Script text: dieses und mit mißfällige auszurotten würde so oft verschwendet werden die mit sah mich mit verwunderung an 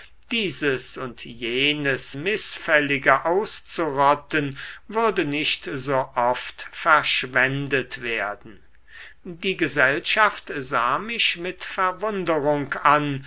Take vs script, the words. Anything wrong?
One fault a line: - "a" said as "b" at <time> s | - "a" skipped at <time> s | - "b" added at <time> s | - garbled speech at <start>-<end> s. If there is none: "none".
- "mit" said as "jenes" at 1.2 s
- "nicht" added at 5.2 s
- "mit" said as "gesellschaft" at 9.6 s